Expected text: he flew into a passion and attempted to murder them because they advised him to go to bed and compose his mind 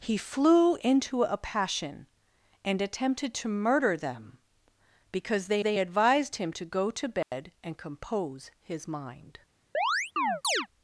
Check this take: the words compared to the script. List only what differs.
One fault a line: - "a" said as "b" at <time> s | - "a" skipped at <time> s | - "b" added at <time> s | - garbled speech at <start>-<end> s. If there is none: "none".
- "they" added at 5.6 s